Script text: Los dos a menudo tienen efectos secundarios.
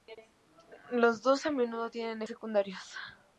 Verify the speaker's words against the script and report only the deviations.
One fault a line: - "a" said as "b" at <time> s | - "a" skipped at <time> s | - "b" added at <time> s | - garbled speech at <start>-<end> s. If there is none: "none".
- "efectos" skipped at 2.2 s